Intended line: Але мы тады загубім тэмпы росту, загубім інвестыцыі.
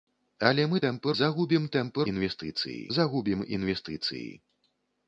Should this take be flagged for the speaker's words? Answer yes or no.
yes